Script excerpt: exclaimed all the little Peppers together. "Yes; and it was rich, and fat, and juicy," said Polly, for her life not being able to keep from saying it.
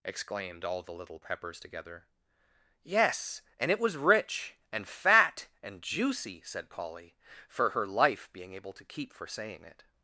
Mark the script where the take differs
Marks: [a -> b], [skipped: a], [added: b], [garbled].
exclaimed all the little Peppers together. "Yes; and it was rich, and fat, and juicy," said Polly, for her life [skipped: not] being able to keep [from -> for] saying it.